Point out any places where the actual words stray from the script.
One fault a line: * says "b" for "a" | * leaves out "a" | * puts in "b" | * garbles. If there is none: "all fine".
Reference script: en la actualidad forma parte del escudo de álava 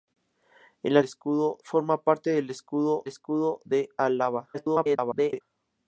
* says "escudo" for "actualidad"
* puts in "escudo"
* garbles